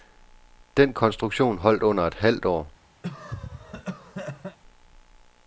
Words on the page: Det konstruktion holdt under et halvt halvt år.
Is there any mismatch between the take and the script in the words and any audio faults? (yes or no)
yes